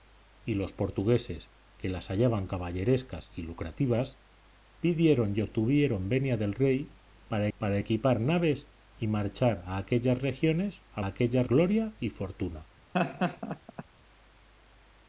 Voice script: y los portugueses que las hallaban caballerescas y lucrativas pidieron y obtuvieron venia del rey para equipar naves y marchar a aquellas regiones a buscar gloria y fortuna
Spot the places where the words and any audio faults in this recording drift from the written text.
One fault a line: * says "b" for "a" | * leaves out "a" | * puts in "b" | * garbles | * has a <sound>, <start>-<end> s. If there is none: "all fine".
* puts in "para"
* says "aquellas" for "buscar"
* has a laugh, 12.9-13.8 s